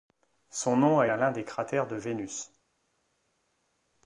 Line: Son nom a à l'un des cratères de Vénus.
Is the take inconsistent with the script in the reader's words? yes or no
no